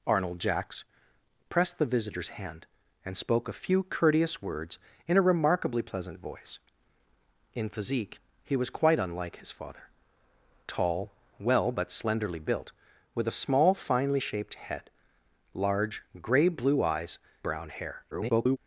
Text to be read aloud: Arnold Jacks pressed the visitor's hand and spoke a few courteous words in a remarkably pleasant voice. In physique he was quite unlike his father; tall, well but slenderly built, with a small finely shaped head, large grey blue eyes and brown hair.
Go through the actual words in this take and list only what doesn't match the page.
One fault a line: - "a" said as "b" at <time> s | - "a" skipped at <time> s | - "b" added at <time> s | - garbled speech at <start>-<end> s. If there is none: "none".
- "and" skipped at 17.2 s
- garbled speech at 18.1-18.6 s